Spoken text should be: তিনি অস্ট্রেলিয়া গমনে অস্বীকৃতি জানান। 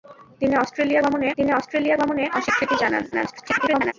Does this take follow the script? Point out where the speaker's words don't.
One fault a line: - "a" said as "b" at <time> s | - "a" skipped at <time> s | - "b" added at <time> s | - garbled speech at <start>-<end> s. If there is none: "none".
- "তিনি অস্ট্রেলিয়া গমনে" added at 1.4 s
- garbled speech at 3.1-3.9 s